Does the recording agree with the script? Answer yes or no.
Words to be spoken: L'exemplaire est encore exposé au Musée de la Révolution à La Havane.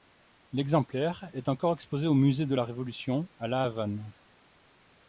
yes